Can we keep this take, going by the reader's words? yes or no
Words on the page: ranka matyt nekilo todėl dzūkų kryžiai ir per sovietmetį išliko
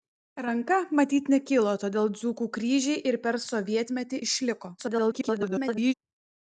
no